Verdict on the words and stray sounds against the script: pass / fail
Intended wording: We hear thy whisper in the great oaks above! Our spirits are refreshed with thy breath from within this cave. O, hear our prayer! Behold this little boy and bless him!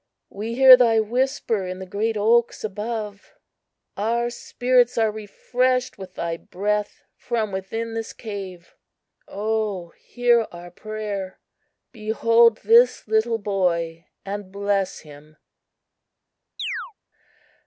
fail